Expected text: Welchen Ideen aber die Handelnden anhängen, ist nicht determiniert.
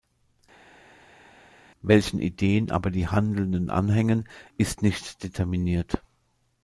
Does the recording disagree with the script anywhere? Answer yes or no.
no